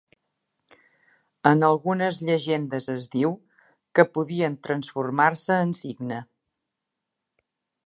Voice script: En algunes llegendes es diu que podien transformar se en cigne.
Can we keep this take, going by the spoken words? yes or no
yes